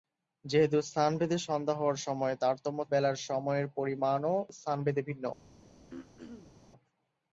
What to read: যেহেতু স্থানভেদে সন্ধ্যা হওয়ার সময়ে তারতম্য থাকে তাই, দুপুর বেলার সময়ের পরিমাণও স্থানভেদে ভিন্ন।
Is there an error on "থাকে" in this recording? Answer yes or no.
yes